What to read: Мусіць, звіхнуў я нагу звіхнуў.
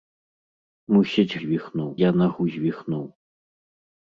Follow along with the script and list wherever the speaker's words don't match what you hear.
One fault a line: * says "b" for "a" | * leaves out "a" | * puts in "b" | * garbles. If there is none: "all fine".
all fine